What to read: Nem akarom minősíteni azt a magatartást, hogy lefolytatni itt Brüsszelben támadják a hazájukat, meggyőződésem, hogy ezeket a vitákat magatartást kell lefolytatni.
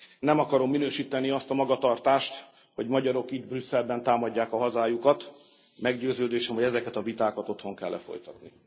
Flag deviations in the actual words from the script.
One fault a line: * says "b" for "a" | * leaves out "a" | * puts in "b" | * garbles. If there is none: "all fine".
* says "magyarok" for "lefolytatni"
* says "otthon" for "magatartást"